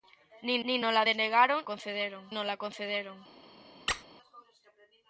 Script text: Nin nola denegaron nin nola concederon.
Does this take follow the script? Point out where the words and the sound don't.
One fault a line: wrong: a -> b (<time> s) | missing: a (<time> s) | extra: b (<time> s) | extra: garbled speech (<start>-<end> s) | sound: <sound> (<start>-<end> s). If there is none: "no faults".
extra: nin (0.7 s)
wrong: nin -> concederon (1.7 s)
sound: squeak (3.9-4.0 s)